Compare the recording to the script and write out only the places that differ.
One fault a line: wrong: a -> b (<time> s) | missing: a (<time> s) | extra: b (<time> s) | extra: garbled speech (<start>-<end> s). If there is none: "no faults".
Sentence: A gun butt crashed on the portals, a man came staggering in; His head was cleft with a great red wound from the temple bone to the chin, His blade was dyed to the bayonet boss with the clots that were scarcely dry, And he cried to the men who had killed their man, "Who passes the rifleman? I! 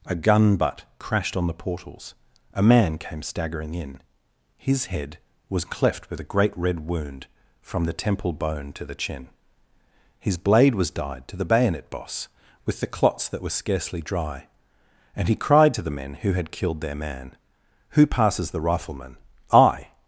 no faults